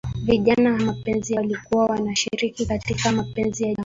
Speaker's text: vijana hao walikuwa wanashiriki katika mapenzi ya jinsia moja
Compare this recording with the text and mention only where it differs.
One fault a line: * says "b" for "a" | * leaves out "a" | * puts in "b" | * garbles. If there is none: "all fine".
* says "mapenzi" for "hao"
* leaves out "jinsia"